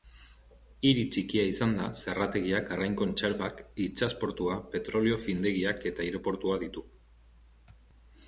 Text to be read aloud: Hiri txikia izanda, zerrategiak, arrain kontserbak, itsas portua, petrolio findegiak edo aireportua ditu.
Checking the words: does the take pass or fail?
fail